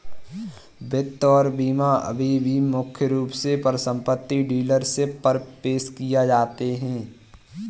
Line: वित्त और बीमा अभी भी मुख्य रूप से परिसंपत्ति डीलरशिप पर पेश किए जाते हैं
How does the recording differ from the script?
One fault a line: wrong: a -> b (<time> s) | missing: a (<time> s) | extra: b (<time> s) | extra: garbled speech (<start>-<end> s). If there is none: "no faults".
no faults